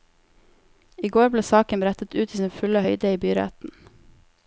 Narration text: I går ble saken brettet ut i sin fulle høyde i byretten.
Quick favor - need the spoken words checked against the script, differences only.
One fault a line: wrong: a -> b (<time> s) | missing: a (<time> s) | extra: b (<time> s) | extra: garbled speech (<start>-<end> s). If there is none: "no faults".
no faults